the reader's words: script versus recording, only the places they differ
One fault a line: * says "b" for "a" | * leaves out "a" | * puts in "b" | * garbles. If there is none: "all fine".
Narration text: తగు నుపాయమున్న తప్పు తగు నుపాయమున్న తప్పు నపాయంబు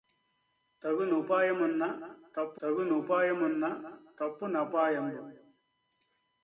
all fine